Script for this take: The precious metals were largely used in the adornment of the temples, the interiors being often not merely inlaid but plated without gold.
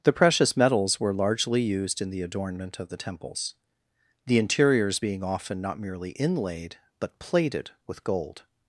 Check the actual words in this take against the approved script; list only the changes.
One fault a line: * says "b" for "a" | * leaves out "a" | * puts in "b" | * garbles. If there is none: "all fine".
* says "with" for "without"